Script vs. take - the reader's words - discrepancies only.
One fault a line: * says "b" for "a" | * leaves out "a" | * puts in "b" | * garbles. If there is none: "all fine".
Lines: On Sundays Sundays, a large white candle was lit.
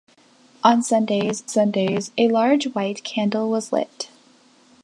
all fine